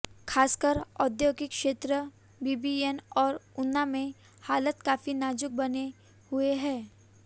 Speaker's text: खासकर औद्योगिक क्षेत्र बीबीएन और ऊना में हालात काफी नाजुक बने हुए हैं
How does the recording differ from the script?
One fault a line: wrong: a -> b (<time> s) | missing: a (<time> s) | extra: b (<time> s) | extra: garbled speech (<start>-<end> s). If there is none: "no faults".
no faults